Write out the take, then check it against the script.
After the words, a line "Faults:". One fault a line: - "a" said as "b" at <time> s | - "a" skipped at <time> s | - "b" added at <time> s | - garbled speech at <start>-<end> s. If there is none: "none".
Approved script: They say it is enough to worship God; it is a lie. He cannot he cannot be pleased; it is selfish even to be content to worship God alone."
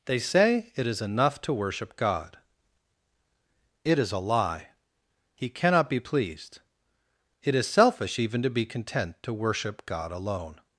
They say it is enough to worship God; it is a lie. He cannot be pleased; it is selfish even to be content to worship God alone."
Faults:
- "he cannot" skipped at 5.9 s